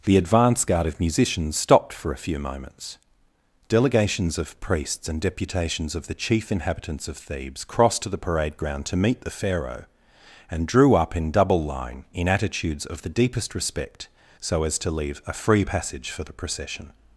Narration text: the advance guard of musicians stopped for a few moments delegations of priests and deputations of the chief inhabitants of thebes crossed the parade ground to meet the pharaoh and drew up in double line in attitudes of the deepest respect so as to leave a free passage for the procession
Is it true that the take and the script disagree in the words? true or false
true